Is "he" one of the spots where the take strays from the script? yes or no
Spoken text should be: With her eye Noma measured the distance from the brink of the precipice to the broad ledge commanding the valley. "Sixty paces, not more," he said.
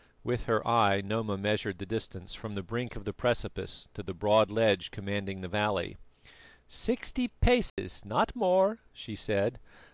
yes